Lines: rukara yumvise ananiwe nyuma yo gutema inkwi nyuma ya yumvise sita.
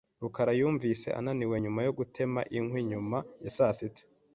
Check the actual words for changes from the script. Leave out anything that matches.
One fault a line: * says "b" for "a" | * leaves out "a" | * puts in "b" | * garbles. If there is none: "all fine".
* says "saa" for "yumvise"